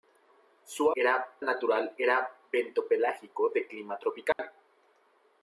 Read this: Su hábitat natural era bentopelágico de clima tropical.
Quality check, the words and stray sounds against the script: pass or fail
fail